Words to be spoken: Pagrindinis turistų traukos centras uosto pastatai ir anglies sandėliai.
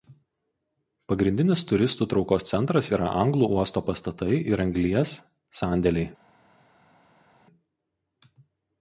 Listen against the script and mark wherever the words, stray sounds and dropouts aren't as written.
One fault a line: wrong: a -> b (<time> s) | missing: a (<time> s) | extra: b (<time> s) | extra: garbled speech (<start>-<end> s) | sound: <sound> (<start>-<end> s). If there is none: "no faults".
extra: yra anglų (3.0 s)